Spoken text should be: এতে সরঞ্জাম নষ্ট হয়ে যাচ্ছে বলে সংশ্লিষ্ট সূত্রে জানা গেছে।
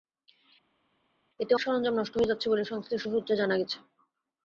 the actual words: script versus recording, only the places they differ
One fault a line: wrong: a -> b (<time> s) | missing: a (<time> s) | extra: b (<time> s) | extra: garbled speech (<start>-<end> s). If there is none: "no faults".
no faults